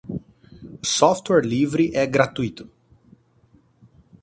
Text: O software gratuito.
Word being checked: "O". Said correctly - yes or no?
yes